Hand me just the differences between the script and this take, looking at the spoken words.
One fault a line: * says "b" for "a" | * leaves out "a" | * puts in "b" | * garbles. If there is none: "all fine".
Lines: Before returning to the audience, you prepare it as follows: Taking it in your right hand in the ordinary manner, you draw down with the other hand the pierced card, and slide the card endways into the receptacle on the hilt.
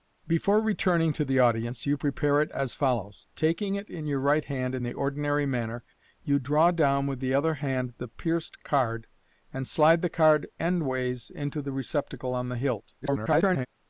* garbles